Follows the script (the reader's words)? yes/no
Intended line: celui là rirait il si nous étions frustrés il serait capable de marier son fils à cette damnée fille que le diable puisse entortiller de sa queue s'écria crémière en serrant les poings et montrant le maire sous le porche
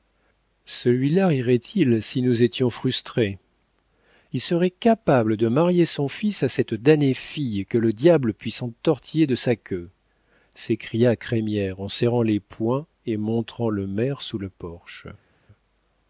yes